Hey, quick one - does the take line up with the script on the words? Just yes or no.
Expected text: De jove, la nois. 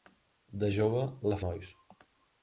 yes